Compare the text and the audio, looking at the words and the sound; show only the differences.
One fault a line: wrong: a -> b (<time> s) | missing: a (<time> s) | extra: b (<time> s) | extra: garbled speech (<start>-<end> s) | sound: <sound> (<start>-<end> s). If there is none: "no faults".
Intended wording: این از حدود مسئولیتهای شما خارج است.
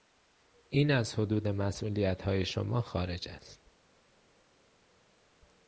no faults